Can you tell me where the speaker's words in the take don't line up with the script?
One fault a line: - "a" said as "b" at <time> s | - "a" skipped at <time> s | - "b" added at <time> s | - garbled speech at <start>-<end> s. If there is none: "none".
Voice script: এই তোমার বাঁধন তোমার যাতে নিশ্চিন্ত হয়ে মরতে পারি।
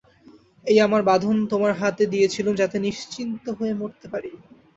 - "তোমার" said as "আমার" at 0.9 s
- "হাতে দিয়েছিলুম" added at 1.8 s